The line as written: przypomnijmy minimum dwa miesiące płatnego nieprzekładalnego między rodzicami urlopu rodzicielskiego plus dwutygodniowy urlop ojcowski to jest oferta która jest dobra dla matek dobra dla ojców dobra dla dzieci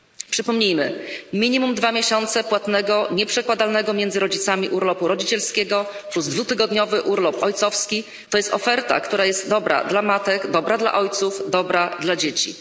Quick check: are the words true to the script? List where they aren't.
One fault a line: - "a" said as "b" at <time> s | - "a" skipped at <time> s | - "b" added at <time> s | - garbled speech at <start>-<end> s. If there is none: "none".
none